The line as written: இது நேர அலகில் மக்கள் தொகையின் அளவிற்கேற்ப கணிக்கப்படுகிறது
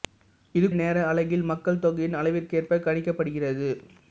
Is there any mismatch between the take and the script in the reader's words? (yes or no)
no